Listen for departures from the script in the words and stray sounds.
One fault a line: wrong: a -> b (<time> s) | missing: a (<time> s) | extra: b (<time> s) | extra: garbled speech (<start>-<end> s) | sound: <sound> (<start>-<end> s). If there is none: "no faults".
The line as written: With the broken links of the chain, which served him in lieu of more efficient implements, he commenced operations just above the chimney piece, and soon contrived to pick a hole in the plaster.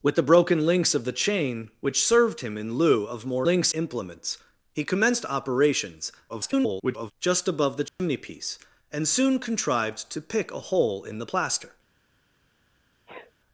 wrong: efficient -> links (3.4 s)
extra: garbled speech (6.3-7.1 s)
sound: dropout (7.9-8.0 s)
sound: sneeze (13.1-13.3 s)